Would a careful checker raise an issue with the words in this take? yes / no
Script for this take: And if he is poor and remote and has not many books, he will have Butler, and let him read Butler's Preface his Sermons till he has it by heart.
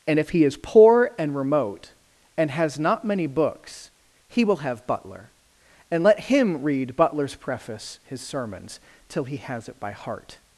no